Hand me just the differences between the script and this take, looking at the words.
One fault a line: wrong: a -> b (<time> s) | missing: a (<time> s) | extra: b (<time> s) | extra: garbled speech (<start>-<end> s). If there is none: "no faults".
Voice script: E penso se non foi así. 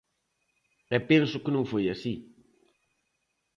wrong: se -> que (1.4 s)